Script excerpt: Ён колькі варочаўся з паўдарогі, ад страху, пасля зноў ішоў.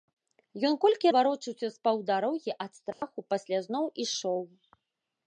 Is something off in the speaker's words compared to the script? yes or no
no